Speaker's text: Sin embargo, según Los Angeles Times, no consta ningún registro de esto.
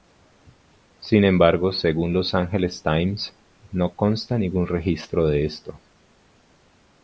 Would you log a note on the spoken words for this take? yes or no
no